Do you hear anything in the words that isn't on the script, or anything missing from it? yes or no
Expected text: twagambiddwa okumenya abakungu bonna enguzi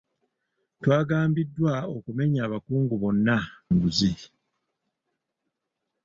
no